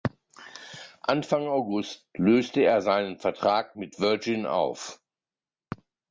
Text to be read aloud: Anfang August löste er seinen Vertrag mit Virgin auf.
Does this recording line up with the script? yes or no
yes